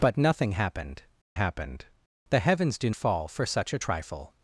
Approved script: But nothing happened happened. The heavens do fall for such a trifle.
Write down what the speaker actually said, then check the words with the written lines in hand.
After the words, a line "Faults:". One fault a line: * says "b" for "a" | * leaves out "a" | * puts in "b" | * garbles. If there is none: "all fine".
But nothing happened happened. The heavens do fall for such a trifle.
Faults:
all fine